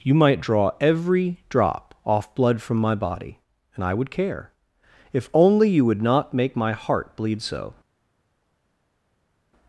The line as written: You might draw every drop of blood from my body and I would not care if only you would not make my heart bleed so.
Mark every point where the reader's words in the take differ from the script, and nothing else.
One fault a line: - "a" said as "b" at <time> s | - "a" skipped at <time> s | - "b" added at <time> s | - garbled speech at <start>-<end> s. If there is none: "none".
- "of" said as "off" at 2.0 s
- "not" skipped at 4.1 s